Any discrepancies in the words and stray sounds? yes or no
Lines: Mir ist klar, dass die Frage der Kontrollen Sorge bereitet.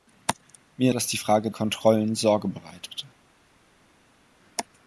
yes